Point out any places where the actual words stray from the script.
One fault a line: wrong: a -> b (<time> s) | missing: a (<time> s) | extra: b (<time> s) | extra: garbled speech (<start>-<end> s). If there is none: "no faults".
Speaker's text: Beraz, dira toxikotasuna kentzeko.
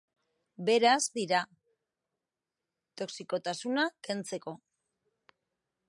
no faults